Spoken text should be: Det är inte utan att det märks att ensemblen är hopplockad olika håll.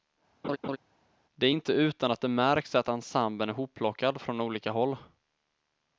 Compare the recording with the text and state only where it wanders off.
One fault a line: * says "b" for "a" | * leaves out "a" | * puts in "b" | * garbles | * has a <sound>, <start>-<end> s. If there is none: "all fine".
* has a laugh, 0.4-0.8 s
* puts in "från"